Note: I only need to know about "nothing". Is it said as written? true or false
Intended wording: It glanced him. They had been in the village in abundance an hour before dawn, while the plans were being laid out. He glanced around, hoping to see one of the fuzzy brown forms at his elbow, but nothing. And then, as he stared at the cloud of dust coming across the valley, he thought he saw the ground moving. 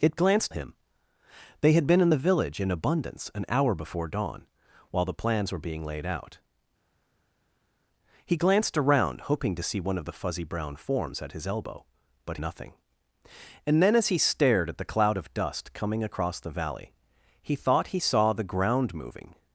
true